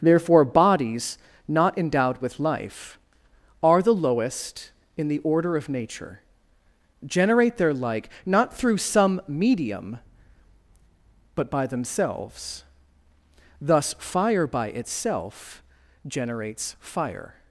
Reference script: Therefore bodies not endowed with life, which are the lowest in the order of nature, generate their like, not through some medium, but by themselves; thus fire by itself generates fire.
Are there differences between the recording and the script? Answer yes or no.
yes